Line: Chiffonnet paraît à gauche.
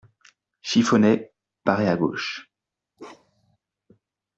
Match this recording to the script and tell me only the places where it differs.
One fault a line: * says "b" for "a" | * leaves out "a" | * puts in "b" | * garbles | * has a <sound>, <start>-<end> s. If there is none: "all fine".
* has a bark, 3.0-3.6 s